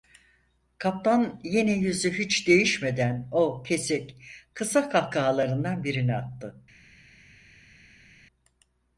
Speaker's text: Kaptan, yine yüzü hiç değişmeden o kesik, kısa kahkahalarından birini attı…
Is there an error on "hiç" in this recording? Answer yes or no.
no